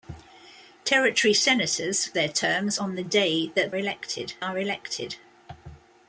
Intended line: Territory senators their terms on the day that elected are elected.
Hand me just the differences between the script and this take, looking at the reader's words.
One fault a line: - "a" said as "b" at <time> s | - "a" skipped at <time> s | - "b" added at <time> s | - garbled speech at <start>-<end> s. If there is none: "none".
none